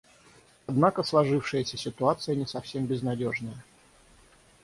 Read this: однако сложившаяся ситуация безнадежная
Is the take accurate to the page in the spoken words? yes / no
no